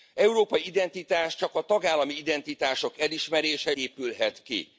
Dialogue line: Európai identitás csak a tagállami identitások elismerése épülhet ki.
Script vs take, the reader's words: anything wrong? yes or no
no